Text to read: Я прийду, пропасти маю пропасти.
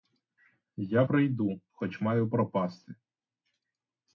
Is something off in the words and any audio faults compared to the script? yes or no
yes